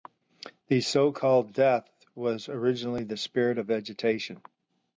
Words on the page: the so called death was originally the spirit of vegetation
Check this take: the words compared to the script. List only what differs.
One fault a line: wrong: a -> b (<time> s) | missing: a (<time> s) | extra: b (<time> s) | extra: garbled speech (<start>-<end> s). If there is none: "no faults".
no faults